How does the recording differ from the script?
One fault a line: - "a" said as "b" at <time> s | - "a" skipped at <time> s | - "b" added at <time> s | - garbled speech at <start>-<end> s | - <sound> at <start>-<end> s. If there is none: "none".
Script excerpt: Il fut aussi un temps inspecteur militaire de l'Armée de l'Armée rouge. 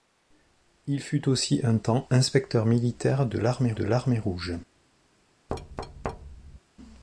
- thud at 5.5-6.6 s